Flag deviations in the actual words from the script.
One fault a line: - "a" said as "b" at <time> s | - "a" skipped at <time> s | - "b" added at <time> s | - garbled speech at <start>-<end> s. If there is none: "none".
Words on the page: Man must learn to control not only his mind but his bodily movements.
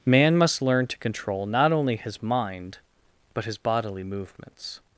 none